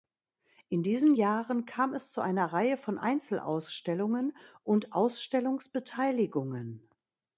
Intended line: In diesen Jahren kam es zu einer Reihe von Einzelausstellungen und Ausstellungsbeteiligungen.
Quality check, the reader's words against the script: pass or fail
pass